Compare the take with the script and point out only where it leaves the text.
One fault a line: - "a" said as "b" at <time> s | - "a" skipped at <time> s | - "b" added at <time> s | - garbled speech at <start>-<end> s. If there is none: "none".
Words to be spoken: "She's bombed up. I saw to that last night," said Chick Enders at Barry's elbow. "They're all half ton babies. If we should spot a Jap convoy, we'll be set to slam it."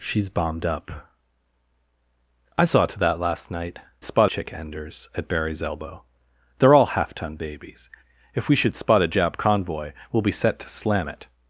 - "said" said as "spot" at 4.0 s